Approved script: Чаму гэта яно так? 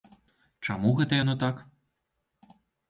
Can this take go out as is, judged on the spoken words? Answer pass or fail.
pass